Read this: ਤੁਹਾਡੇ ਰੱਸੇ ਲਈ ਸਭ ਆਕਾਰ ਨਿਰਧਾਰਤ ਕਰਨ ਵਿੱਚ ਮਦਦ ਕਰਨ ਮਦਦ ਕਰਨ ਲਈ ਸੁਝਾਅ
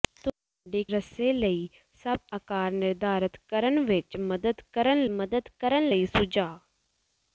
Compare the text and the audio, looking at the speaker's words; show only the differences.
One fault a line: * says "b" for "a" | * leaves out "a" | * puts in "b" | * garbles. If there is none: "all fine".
all fine